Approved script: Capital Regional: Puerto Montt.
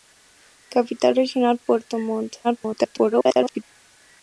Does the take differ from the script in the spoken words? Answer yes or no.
yes